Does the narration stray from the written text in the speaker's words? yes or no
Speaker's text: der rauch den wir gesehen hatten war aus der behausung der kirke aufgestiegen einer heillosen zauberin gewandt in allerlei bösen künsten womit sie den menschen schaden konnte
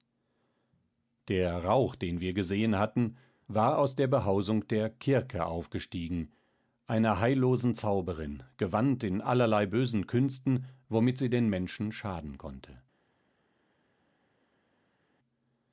no